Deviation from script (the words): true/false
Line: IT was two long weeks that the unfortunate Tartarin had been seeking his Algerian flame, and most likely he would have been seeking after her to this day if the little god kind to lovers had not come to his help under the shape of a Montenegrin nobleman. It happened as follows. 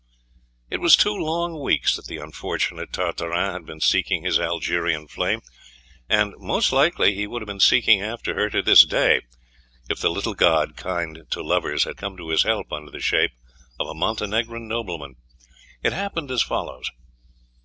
true